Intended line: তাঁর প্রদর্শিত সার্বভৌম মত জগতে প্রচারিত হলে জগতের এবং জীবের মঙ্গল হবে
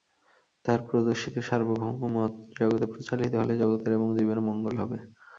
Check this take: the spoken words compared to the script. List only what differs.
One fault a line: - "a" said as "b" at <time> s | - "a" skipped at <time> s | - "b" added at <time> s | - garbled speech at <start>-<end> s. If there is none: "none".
none